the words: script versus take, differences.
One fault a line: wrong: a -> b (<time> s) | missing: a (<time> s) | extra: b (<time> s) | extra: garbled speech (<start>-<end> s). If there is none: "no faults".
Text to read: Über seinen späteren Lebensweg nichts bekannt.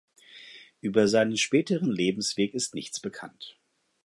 extra: ist (2.5 s)